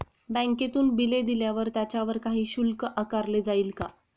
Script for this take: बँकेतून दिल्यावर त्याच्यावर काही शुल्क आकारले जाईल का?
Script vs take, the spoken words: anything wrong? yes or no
yes